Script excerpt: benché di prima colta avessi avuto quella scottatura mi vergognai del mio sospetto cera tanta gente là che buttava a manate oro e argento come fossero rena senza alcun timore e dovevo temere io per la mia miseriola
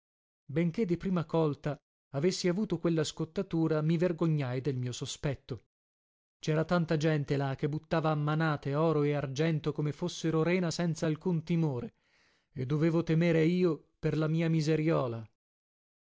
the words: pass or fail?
pass